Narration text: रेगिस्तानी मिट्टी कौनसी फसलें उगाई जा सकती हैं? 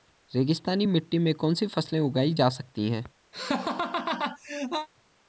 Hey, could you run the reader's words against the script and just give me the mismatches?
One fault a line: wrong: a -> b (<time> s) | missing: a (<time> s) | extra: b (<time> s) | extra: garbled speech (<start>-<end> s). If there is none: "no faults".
extra: में (1.2 s)